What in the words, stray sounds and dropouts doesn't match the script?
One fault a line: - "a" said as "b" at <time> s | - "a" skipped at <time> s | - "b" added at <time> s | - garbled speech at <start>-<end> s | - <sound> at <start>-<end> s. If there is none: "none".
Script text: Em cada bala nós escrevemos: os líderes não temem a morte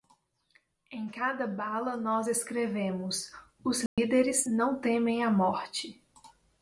- dropout at 3.9-4.0 s